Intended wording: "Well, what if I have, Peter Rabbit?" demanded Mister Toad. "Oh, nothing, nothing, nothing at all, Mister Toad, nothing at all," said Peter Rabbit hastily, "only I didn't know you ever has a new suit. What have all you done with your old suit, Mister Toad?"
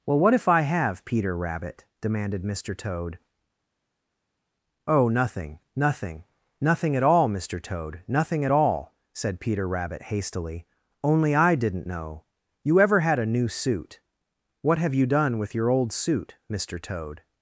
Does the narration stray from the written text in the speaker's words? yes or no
yes